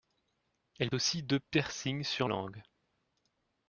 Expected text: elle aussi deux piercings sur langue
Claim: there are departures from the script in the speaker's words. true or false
false